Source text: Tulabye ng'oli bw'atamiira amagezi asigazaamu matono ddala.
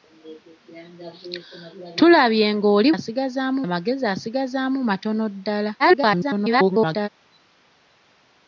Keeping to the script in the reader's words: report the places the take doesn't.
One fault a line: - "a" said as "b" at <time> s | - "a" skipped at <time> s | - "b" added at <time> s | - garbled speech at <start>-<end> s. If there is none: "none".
- "bw'atamiira" said as "asigazaamu" at 2.9 s
- garbled speech at 5.8-7.1 s